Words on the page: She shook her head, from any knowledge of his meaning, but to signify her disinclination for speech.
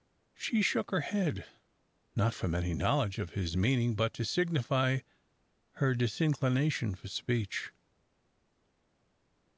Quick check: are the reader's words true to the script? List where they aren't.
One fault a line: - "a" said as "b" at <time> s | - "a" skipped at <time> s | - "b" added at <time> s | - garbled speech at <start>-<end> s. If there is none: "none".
- "not" added at 2.1 s